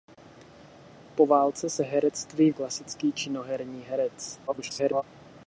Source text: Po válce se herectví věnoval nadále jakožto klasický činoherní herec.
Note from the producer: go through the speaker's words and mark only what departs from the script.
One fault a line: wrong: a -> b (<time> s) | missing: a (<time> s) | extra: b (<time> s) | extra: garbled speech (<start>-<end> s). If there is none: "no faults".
missing: věnoval nadále jakožto (2.5 s)
extra: garbled speech (4.5-5.0 s)